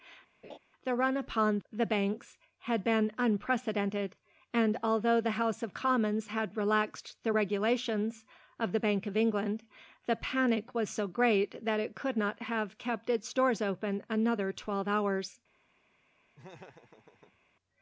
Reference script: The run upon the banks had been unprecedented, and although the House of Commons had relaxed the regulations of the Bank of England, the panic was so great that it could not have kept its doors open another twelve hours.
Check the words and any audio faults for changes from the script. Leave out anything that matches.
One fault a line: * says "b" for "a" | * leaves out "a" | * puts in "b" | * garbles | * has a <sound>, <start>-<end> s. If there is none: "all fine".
* has a laugh, 0.4-0.6 s
* has a laugh, 16.4-17.4 s